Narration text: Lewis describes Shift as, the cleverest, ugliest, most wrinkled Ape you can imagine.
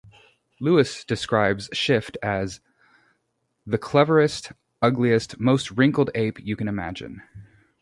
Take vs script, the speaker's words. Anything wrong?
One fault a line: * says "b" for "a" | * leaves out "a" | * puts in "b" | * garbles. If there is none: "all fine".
all fine